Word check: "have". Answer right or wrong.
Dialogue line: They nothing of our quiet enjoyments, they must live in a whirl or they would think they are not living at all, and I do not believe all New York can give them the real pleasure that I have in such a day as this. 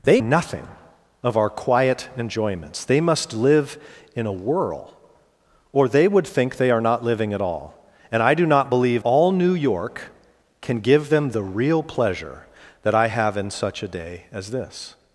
right